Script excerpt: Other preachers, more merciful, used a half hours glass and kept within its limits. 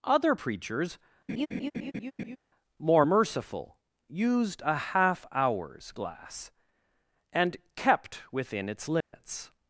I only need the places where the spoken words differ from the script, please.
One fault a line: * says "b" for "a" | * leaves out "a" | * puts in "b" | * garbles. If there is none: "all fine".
all fine